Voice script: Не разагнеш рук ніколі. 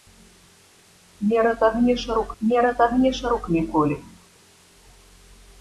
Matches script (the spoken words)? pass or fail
fail